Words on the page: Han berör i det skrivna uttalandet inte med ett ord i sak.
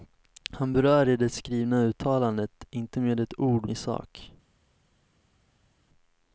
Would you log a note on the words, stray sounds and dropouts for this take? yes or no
no